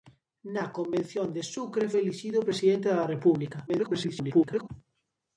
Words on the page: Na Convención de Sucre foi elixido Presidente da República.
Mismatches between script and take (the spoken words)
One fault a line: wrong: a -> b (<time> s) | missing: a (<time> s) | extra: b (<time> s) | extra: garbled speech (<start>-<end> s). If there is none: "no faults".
missing: foi (1.9 s)
extra: garbled speech (3.7-4.7 s)